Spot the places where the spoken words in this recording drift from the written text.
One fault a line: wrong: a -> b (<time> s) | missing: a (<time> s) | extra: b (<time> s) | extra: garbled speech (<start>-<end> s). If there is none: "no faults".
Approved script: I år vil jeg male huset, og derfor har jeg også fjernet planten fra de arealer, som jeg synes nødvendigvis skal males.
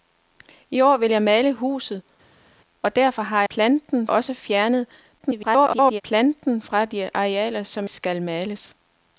wrong: jeg -> planten (3.5 s)
extra: garbled speech (5.2-6.0 s)
missing: jeg synes nødvendigvis (7.9 s)